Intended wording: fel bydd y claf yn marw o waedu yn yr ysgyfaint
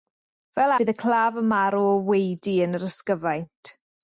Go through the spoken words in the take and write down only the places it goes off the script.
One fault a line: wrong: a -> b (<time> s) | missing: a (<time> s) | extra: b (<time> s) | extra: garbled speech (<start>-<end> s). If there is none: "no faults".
no faults